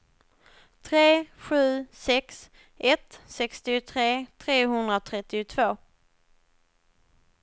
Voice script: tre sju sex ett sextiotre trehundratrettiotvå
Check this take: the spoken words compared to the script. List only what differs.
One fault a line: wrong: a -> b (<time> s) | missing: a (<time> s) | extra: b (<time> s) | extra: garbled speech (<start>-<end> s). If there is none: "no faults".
no faults